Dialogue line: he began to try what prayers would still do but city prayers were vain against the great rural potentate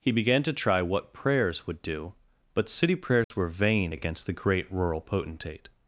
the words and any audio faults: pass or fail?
fail